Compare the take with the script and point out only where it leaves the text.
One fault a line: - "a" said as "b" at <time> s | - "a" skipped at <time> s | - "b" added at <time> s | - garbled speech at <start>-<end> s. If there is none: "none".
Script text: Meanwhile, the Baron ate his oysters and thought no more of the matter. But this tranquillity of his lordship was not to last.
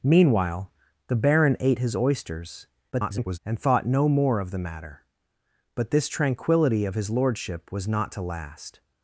- garbled speech at 2.9-3.4 s